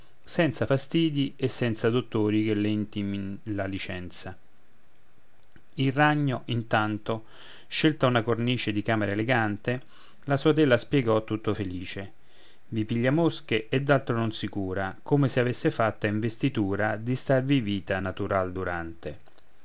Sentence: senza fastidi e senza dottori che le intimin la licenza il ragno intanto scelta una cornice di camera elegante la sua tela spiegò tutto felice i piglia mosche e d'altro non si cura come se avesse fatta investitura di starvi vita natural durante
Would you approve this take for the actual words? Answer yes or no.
yes